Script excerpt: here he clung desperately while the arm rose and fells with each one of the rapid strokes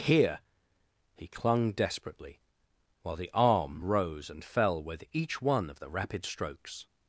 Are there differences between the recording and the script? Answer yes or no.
yes